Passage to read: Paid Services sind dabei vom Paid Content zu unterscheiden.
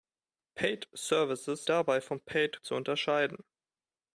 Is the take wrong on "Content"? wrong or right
wrong